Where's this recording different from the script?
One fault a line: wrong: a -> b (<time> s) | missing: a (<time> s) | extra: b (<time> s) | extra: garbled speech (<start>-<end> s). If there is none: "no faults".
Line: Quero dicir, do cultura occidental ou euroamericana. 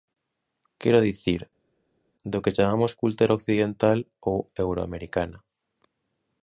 extra: que chamamos (2.4 s)